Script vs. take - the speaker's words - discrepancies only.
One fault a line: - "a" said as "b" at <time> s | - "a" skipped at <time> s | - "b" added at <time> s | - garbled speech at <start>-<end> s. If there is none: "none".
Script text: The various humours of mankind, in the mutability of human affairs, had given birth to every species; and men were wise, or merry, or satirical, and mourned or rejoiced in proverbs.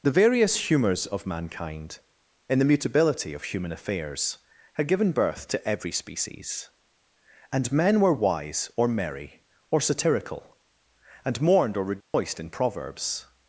none